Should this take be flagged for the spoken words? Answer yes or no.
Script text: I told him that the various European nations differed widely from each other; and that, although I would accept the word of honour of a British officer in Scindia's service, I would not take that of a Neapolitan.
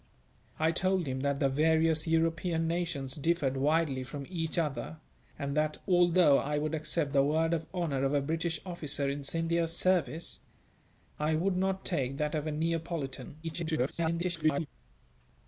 yes